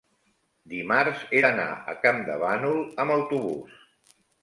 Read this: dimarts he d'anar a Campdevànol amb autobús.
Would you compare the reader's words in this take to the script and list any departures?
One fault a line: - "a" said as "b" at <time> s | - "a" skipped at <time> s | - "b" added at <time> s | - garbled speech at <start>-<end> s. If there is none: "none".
none